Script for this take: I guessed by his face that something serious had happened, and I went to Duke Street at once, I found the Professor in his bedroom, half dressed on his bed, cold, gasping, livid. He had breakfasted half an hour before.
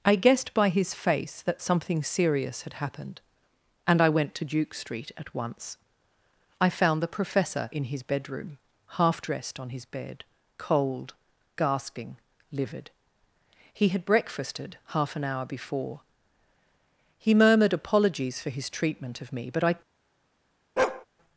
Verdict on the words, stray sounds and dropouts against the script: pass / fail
fail